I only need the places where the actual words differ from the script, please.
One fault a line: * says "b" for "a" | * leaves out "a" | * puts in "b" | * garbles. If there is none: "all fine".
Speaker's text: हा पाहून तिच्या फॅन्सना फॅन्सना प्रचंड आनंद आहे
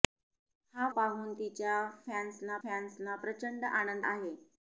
all fine